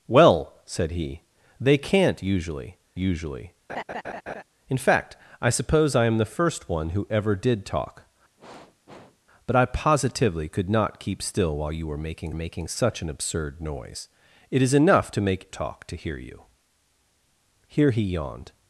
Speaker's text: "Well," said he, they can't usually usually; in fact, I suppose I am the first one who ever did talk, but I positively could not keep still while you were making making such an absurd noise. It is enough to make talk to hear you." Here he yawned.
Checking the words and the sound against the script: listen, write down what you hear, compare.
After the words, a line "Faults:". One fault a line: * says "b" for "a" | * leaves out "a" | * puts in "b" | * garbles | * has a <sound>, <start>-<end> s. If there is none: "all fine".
"Well," said he, they can't usually usually; in fact, I suppose I am the first one who ever did talk, but I positively could not keep still while you were making making such an absurd noise. It is enough to make talk to hear you." Here he yawned.
Faults:
* has a laugh, 3.7-4.4 s
* has a sniff, 8.4-9.2 s